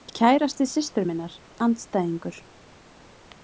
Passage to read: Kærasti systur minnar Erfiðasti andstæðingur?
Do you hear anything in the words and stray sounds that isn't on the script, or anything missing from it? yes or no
yes